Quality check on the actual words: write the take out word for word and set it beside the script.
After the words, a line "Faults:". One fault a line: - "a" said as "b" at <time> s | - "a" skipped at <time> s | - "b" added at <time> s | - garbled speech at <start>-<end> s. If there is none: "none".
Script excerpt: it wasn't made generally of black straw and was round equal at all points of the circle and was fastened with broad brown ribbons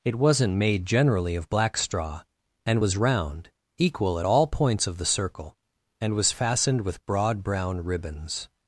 it wasn't made generally of black straw and was round equal at all points of the circle and was fastened with broad brown ribbons
Faults:
none